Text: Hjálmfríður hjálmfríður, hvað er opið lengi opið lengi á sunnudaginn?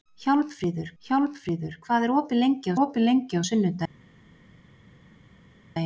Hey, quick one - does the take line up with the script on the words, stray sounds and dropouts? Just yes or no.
yes